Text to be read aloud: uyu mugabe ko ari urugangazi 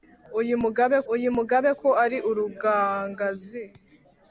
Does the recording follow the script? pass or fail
fail